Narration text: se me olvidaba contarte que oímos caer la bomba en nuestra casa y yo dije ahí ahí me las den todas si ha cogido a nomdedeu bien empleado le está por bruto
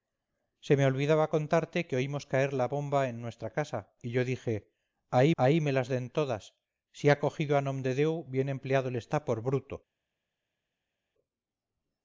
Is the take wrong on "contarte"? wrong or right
right